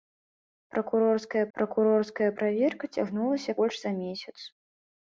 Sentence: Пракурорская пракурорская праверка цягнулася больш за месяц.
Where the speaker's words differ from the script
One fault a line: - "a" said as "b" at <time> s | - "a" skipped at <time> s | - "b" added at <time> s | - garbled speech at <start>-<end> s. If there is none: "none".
none